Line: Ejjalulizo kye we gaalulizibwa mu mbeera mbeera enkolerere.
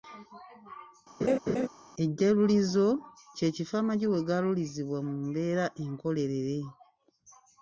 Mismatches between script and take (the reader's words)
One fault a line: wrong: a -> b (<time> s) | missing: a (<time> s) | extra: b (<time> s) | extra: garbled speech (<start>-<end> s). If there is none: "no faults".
extra: kifo amagi (3.6 s)
missing: mbeera (5.7 s)